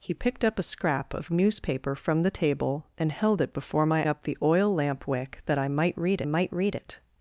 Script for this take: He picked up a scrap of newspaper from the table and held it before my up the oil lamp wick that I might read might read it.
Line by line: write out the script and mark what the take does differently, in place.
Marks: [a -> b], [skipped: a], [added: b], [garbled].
He picked up a scrap of newspaper from the table and held it before my up the oil lamp wick that I might read might read it.